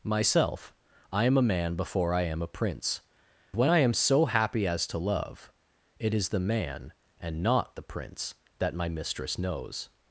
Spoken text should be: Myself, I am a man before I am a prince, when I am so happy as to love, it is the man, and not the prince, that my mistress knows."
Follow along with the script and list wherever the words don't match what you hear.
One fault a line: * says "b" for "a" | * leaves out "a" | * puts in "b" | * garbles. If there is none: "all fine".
all fine